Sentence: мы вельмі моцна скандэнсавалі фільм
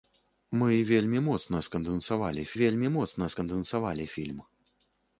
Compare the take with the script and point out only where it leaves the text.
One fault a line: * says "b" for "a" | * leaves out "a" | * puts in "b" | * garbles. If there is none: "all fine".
* puts in "вельмі моцна скандэнсавалі"